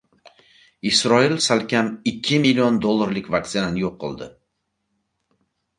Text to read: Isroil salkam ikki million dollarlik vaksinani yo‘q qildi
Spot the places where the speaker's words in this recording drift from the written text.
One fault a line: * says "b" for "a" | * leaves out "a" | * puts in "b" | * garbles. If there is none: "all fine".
all fine